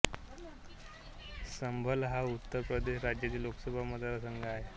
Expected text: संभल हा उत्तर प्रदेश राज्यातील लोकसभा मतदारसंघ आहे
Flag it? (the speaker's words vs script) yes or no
no